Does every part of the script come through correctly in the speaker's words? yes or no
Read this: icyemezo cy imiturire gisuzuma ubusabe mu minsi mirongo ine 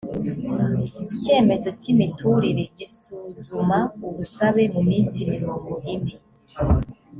yes